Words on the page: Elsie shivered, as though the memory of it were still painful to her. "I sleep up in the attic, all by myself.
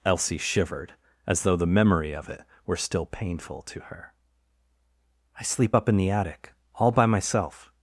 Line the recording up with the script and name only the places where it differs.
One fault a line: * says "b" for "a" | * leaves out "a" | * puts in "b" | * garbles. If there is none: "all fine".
all fine